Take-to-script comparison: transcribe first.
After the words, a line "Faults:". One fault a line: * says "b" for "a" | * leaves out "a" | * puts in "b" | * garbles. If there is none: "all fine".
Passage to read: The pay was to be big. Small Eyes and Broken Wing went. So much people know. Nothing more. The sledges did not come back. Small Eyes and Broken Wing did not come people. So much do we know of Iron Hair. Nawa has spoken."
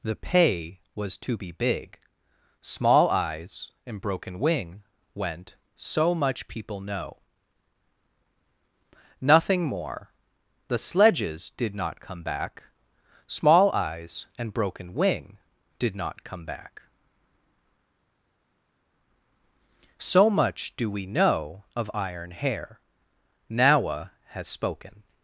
The pay was to be big. Small Eyes and Broken Wing went. So much people know. Nothing more. The sledges did not come back. Small Eyes and Broken Wing did not come back. So much do we know of Iron Hair. Nawa has spoken."
Faults:
* says "back" for "people"